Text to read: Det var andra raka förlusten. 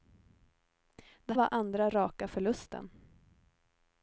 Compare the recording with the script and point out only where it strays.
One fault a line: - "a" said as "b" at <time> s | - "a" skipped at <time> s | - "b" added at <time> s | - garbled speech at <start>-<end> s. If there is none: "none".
none